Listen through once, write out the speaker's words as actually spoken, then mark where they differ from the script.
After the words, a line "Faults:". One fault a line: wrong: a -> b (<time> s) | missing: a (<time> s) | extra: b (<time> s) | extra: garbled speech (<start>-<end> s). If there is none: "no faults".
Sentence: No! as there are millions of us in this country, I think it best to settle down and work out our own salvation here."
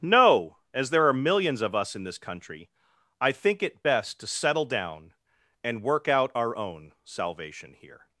No! as there are millions of us in this country, I think it best to settle down and work out our own salvation here."
Faults:
no faults